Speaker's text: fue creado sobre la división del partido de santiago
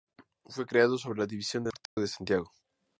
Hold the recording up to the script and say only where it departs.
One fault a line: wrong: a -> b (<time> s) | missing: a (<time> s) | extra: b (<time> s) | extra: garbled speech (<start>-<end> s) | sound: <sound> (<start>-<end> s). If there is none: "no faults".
sound: dropout (1.9-2.0 s)